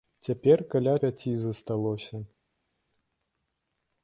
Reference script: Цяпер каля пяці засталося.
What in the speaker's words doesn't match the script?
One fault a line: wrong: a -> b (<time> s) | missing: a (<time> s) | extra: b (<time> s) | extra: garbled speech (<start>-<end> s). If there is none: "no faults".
no faults